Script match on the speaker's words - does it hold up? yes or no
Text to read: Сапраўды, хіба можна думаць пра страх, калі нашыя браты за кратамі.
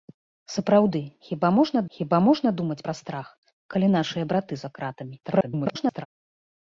no